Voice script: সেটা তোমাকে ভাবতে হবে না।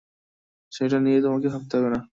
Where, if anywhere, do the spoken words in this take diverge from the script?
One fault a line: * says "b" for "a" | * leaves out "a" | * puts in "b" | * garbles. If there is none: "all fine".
* puts in "নিয়ে"